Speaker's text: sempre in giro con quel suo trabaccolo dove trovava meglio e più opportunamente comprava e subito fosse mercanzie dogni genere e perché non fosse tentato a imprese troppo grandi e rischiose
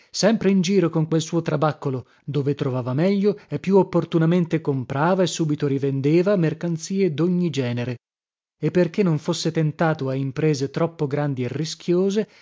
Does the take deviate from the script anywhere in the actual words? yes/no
yes